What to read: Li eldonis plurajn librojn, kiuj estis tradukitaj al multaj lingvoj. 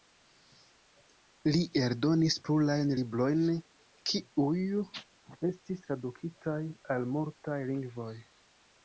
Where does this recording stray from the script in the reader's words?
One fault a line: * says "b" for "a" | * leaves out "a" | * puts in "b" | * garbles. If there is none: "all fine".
all fine